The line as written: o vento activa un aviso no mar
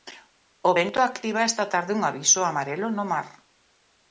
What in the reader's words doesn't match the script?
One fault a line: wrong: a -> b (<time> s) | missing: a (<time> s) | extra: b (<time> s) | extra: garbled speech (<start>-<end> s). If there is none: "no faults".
extra: esta tarde (1.5 s)
extra: amarelo (2.5 s)